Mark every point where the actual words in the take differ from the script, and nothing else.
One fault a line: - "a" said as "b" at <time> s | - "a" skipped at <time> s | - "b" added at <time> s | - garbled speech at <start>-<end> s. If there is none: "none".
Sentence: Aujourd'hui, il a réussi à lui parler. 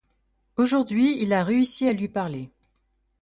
none